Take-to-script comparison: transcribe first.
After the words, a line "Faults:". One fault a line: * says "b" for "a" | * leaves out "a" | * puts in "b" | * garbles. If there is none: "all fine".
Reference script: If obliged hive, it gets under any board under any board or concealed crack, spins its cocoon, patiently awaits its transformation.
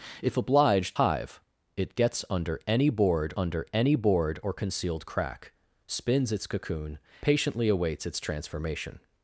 If obliged hive, it gets under any board under any board or concealed crack, spins its cocoon, patiently awaits its transformation.
Faults:
all fine